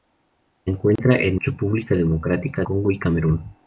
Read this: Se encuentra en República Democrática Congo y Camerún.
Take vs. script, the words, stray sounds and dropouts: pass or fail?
fail